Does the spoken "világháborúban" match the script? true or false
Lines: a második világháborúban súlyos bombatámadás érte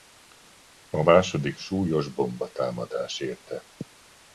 false